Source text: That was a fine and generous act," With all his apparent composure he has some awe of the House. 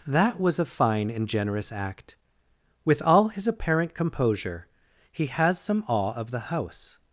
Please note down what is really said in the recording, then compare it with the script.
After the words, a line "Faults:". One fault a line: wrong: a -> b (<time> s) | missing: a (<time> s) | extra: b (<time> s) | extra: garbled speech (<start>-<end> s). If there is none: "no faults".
That was a fine and generous act," With all his apparent composure he has some awe of the House.
Faults:
no faults